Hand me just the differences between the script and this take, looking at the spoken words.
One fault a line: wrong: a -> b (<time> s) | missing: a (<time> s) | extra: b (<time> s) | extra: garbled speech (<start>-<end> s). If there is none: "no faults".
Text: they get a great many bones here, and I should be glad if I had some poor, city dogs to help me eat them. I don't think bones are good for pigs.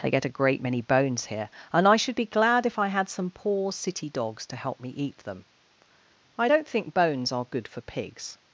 no faults